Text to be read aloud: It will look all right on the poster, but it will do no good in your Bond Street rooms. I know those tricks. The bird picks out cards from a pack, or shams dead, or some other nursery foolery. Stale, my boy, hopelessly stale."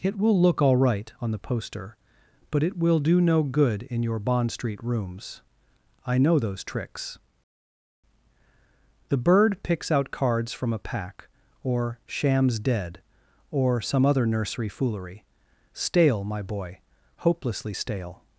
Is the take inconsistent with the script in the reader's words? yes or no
no